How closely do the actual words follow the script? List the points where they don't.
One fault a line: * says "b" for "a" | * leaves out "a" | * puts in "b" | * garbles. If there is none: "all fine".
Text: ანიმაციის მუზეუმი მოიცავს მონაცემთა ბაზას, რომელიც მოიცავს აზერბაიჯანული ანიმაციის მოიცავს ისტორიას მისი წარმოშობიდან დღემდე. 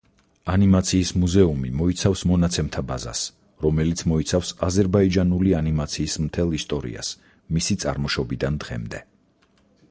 * says "მთელ" for "მოიცავს"